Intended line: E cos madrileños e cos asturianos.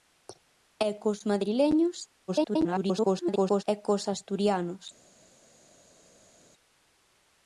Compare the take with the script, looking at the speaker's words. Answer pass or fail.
fail